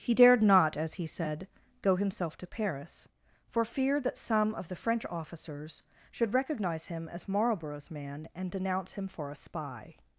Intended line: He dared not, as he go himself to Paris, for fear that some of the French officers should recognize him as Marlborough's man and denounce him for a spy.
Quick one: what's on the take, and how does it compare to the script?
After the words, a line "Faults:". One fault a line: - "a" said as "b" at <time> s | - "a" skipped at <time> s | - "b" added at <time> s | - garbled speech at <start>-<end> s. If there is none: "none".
He dared not, as he said, go himself to Paris, for fear that some of the French officers should recognize him as Marlborough's man and denounce him for a spy.
Faults:
- "said" added at 1.1 s